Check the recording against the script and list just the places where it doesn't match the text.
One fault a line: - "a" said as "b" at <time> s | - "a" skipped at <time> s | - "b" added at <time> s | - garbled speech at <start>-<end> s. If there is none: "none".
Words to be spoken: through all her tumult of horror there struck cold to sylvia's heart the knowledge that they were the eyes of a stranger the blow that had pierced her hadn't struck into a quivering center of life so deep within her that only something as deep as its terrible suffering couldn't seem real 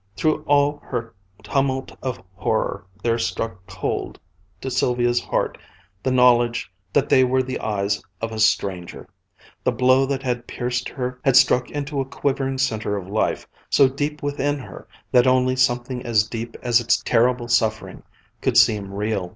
- "hadn't" said as "had" at 11.2 s
- "couldn't" said as "could" at 18.4 s